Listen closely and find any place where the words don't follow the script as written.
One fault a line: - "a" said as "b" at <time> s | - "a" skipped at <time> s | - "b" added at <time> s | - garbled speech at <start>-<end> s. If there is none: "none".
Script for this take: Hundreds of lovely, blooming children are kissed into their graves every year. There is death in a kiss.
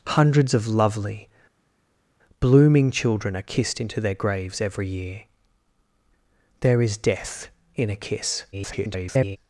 - garbled speech at 8.5-9.4 s